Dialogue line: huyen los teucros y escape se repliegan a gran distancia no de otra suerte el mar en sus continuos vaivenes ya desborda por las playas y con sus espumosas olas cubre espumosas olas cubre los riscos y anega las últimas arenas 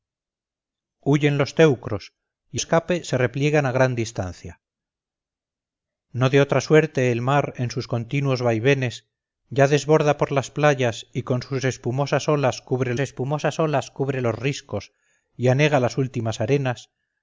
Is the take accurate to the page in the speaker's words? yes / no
yes